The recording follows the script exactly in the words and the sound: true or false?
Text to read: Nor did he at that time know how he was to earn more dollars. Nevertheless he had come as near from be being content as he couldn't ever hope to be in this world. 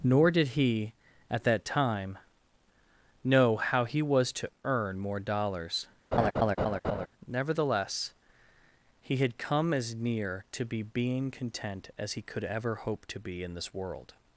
false